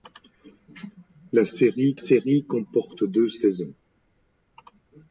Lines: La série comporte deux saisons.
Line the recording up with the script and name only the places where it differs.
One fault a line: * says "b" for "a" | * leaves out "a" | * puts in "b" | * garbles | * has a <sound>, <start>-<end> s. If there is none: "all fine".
* puts in "série"